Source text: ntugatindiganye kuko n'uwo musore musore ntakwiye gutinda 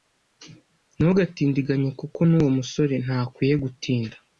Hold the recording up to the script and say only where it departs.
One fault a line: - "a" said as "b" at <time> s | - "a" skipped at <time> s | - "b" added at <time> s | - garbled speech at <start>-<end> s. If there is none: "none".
- "musore" skipped at 2.9 s